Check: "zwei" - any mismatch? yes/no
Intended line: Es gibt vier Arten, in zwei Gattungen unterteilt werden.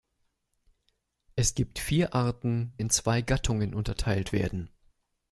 no